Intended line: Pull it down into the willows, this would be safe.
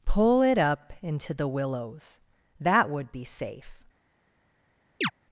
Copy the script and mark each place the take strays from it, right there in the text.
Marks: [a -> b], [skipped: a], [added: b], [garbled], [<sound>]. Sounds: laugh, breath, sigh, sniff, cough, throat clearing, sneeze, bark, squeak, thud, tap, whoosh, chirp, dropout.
Pull it [down -> up] into the willows, [this -> that] would be safe. [chirp]